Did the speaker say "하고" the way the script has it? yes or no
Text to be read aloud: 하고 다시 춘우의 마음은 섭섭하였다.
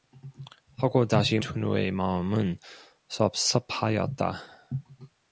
yes